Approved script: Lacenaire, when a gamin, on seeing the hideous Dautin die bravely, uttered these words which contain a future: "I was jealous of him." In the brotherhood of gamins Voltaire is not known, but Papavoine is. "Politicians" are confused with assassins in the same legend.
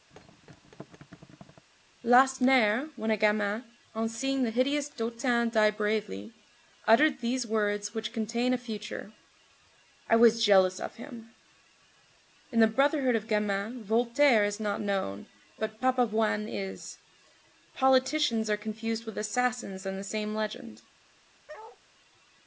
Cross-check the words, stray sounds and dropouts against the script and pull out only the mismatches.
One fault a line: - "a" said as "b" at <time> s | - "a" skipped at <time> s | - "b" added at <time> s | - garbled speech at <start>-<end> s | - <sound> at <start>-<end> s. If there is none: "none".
- thud at 0.1-1.7 s
- bark at 21.5-21.8 s